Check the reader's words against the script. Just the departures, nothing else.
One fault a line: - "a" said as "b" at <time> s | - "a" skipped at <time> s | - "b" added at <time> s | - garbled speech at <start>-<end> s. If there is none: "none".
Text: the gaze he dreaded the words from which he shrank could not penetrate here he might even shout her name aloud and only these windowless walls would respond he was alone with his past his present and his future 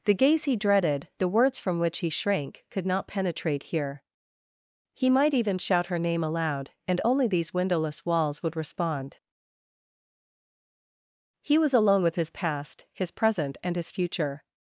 none